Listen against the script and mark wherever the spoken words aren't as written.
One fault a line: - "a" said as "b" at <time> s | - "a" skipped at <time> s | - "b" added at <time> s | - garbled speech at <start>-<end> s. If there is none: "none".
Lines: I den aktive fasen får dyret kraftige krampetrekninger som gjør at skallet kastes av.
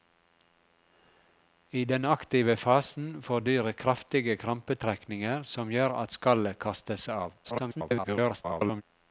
- garbled speech at 7.4-8.8 s